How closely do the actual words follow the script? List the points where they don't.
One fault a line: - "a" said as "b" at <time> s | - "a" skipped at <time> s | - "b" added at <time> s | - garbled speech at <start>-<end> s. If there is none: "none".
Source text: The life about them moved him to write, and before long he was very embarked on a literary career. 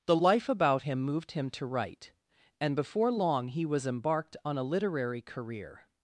- "them" said as "him" at 0.8 s
- "very" skipped at 3.9 s